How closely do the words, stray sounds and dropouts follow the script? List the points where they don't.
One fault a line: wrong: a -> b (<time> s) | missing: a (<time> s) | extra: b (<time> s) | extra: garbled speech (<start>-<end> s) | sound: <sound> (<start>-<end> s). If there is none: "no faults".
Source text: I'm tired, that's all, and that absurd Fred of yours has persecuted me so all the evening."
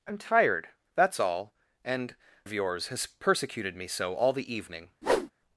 missing: that absurd Fred (2.1 s)
sound: whoosh (5.0-5.3 s)